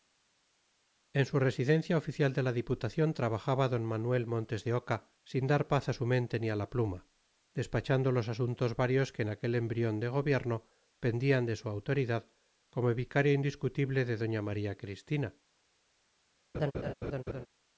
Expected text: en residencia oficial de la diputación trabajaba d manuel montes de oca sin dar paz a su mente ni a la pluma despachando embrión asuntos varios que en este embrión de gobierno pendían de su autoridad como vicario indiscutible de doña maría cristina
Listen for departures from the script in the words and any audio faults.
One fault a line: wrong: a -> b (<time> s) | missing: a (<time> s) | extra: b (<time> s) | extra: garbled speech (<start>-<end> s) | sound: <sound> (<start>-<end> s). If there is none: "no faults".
extra: su (1.3 s)
wrong: embrión -> los (8.1 s)
wrong: este -> aquel (9.3 s)
sound: laugh (16.5-17.5 s)